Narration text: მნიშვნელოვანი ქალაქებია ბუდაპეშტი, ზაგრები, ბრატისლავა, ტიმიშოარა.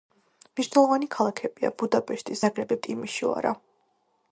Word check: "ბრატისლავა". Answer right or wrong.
wrong